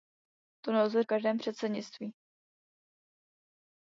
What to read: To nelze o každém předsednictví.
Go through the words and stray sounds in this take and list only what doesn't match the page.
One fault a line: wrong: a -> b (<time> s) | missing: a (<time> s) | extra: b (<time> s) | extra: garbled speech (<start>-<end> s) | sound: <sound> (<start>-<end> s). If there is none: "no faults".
no faults